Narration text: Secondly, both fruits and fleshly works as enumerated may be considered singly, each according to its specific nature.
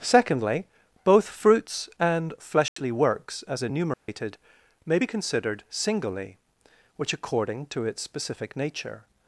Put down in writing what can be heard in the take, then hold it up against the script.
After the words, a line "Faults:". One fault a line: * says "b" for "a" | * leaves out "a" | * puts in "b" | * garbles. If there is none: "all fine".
Secondly, both fruits and fleshly works as enumerated may be considered singly, which according to its specific nature.
Faults:
* says "which" for "each"